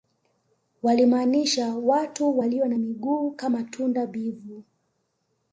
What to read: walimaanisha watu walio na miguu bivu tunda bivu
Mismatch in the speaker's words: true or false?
true